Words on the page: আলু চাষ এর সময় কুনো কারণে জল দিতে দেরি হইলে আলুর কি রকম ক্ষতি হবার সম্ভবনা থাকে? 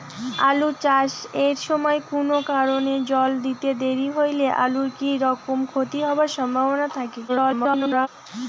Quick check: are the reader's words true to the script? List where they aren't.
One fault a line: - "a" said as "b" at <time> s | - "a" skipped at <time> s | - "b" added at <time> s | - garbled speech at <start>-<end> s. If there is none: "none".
- garbled speech at 7.3-8.1 s